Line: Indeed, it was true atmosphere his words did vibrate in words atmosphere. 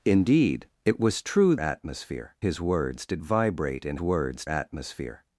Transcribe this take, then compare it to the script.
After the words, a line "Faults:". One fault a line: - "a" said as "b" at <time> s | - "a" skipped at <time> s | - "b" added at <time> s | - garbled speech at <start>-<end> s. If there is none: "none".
Indeed, it was true atmosphere his words did vibrate in words atmosphere.
Faults:
none